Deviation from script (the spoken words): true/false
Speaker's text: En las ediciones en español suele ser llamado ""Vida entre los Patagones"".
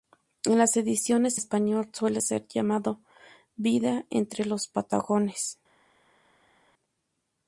true